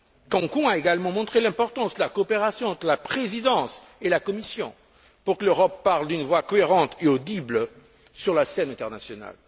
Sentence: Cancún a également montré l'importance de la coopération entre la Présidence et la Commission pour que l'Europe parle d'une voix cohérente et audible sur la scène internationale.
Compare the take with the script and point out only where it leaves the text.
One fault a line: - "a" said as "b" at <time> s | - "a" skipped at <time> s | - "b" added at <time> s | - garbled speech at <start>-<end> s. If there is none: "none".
none